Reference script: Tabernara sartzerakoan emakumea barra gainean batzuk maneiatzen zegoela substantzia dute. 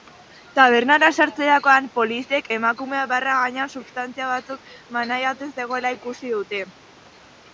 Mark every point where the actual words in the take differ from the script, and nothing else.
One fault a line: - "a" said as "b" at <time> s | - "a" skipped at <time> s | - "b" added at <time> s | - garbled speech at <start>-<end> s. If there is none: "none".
- "poliziek" added at 2.0 s
- "substantzia" added at 3.8 s
- "substantzia" said as "ikusi" at 6.0 s